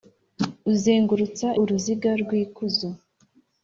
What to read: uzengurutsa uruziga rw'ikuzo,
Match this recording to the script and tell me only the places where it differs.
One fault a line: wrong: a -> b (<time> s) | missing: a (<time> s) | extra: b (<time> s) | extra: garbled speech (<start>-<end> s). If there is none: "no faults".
no faults